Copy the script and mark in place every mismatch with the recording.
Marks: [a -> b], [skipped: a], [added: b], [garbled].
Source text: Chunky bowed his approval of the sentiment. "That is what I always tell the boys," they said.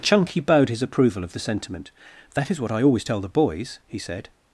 Chunky bowed his approval of the sentiment. "That is what I always tell the boys," [they -> he] said.